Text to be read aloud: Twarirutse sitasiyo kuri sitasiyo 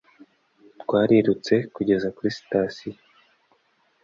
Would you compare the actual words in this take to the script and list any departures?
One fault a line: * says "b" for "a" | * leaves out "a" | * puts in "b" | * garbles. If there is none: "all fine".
* says "kugeza" for "sitasiyo"